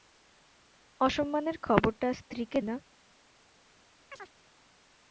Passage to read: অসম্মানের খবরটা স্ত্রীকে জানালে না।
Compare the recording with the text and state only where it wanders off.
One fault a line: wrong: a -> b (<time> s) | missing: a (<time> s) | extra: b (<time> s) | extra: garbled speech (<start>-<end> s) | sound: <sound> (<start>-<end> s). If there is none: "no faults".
missing: জানালে (2.6 s)
sound: chirp (4.1-4.3 s)